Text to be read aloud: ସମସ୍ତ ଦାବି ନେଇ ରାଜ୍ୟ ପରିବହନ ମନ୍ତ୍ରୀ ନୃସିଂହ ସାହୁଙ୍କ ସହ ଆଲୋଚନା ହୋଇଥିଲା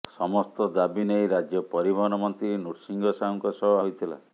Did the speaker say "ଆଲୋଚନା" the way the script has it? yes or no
no